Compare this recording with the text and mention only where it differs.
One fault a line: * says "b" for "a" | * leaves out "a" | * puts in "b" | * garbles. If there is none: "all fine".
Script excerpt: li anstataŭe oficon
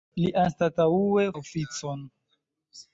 all fine